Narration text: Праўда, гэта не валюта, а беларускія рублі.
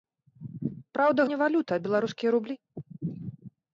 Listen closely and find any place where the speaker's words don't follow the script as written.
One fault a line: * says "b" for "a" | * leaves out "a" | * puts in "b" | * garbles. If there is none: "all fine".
* leaves out "гэта"